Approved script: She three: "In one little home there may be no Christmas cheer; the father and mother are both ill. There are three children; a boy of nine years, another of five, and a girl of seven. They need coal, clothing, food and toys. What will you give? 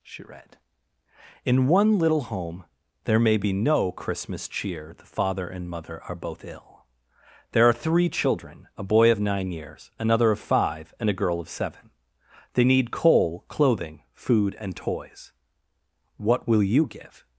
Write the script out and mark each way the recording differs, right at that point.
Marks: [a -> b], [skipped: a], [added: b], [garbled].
She [three: -> read] "In one little home there may be no Christmas cheer; the father and mother are both ill. There are three children; a boy of nine years, another of five, and a girl of seven. They need coal, clothing, food and toys. What will you give?